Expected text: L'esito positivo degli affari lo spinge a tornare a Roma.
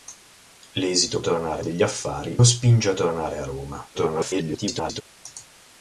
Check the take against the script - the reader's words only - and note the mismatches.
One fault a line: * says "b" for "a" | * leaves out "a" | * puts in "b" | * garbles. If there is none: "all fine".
* says "tornare" for "positivo"
* leaves out "lo"
* garbles